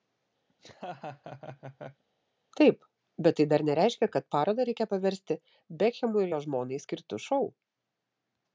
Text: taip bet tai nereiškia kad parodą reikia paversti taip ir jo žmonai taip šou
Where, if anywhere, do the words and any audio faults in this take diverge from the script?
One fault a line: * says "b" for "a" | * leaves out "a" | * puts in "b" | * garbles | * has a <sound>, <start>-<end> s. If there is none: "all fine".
* has a laugh, 0.5-2.0 s
* puts in "dar"
* says "bekhemui" for "taip"
* says "skirtu" for "taip"